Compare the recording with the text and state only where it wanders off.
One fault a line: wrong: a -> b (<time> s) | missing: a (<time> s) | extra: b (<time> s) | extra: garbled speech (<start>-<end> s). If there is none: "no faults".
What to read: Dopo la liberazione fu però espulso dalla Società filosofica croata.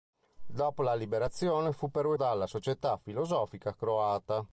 missing: espulso (2.1 s)